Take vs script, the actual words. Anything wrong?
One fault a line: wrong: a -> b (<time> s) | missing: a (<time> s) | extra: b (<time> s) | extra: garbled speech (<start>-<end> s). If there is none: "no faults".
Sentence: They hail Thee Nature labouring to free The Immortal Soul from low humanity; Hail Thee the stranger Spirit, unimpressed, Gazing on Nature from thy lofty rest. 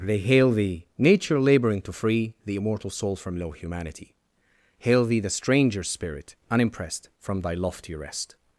missing: Gazing on Nature (7.1 s)